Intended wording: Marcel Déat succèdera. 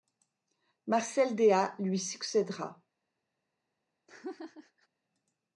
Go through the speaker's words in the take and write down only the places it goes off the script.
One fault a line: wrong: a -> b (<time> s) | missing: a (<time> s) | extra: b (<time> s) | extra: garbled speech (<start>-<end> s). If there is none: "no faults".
extra: lui (1.8 s)